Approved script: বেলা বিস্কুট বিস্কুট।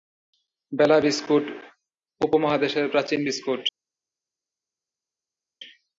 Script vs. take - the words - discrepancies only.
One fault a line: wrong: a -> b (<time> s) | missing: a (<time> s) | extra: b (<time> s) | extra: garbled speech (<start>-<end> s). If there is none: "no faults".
extra: উপমহাদেশের প্রাচীন (2.2 s)